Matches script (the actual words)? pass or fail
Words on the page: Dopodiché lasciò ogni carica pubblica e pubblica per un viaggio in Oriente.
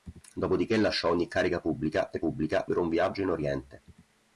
pass